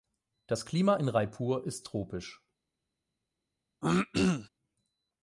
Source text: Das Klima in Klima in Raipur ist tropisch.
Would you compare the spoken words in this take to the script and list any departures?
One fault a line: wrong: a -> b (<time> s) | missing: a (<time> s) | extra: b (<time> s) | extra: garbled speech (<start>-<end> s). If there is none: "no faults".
missing: Klima in (1.1 s)